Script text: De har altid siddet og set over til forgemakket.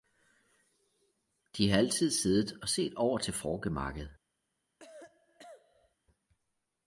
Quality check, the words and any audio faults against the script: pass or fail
fail